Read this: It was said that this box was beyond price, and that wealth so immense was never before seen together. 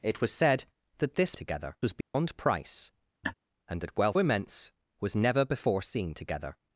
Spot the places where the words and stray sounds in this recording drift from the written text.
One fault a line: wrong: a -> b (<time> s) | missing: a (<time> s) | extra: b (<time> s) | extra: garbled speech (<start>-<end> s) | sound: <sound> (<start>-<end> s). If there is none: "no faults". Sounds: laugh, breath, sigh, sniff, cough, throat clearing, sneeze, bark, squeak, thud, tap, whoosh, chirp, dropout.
wrong: box -> together (1.3 s)
sound: dropout (2.0-2.1 s)
sound: laugh (3.2-3.3 s)
missing: so (4.2 s)